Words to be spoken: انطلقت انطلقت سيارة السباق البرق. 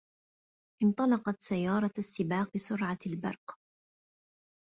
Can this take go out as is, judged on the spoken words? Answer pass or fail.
fail